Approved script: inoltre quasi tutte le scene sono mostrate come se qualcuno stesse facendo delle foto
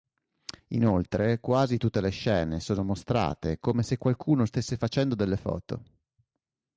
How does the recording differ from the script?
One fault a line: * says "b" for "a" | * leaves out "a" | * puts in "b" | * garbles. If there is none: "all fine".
all fine